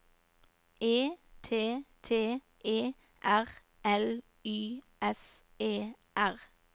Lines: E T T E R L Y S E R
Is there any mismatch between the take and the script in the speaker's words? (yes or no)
no